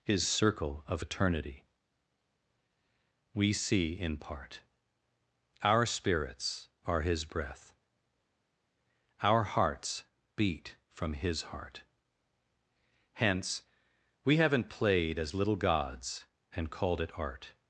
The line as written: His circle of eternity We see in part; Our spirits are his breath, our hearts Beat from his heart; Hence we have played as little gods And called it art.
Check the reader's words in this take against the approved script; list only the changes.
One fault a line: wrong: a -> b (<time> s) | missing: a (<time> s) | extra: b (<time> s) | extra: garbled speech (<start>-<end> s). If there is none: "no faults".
wrong: have -> haven't (14.4 s)